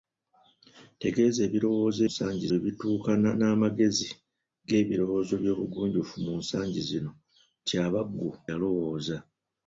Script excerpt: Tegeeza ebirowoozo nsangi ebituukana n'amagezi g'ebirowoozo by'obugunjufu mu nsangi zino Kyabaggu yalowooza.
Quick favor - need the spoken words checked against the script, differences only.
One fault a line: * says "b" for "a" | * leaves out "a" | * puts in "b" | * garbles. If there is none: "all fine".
all fine